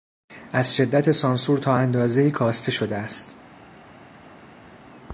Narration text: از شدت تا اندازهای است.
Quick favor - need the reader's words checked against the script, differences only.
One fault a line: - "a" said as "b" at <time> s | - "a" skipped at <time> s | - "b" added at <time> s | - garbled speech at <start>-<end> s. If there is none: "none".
- "سانسور" added at 1.1 s
- "کاسته شده" added at 2.3 s